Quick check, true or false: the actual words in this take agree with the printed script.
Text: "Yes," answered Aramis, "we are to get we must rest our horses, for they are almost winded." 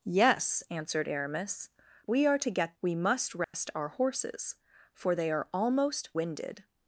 true